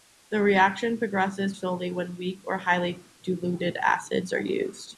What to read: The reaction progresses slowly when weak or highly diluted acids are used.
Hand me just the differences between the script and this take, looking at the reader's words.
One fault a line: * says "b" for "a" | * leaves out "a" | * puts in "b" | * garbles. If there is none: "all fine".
all fine